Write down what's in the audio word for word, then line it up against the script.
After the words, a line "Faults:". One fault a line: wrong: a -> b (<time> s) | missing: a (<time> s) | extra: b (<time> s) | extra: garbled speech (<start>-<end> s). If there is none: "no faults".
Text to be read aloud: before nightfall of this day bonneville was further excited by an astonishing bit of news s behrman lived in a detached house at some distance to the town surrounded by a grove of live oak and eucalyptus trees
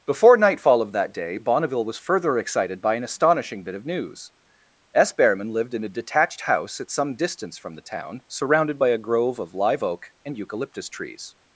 before nightfall of that day bonneville was further excited by an astonishing bit of news s behrman lived in a detached house at some distance from the town surrounded by a grove of live oak and eucalyptus trees
Faults:
wrong: this -> that (0.9 s)
wrong: to -> from (7.6 s)